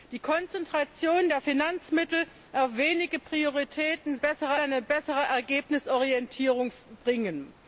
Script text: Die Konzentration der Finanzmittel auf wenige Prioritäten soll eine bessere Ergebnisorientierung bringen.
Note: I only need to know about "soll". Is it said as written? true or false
false